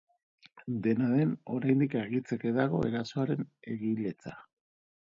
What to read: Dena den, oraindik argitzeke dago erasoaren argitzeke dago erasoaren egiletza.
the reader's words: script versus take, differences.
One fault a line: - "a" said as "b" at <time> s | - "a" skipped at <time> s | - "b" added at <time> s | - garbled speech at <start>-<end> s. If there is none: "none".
- "argitzeke dago erasoaren" skipped at 3.5 s